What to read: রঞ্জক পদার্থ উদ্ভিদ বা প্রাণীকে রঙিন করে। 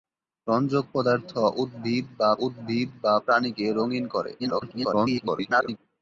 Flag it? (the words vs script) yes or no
yes